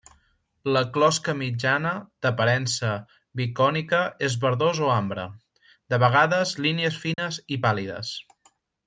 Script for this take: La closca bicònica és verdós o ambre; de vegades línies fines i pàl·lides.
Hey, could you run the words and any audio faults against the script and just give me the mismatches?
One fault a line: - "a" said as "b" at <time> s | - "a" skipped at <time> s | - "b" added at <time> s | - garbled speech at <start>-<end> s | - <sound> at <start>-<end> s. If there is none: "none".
- "mitjana d'aparença" added at 1.4 s
- dropout at 7.1-7.2 s